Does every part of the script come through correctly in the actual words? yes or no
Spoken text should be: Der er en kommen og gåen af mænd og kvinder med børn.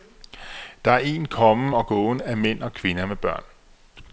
yes